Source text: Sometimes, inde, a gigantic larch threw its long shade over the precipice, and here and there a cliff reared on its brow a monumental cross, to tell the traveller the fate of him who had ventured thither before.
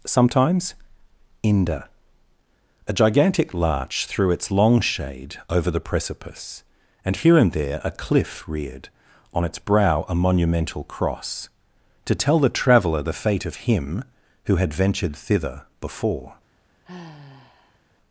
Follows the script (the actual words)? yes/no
yes